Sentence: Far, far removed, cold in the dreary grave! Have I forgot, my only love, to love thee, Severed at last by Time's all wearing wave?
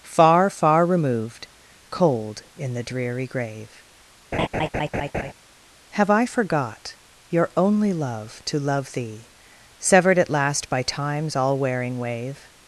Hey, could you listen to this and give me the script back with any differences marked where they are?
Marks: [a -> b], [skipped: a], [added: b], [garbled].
Far, far removed, cold in the dreary grave! Have I forgot, [my -> your] only love, to love thee, Severed at last by Time's all wearing wave?